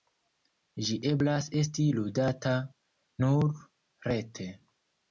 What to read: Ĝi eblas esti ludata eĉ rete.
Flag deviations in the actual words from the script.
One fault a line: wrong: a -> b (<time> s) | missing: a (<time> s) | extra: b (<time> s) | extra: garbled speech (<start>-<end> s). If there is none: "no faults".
wrong: eĉ -> nur (3.3 s)